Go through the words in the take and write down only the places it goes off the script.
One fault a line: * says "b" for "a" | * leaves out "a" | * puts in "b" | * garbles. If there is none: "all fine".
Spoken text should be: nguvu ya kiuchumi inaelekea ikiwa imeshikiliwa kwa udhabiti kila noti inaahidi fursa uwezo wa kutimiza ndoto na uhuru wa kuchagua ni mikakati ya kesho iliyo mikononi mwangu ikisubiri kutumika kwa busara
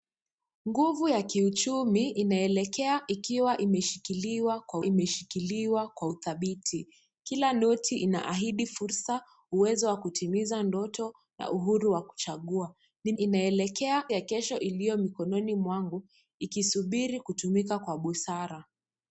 * puts in "imeshikiliwa kwa"
* says "inaelekea" for "mikakati"